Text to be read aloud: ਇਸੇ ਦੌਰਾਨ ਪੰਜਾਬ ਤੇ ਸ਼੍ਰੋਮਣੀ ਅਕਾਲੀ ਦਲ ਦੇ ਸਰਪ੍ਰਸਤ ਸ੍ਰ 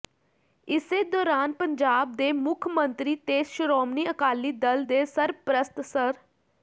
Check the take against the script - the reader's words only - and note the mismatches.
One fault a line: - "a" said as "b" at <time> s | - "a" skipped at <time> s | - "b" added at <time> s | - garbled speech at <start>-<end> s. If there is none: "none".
- "ਦੇ ਮੁੱਖ ਮੰਤਰੀ" added at 2.1 s